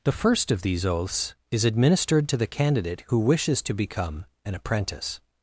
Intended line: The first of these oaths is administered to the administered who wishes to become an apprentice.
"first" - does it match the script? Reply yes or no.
yes